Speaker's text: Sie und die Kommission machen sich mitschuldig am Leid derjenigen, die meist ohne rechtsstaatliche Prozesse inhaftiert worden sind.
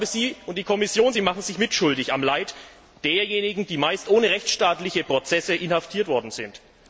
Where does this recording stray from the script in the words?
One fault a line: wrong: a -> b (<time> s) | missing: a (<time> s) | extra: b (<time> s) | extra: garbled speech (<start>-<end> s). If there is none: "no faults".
no faults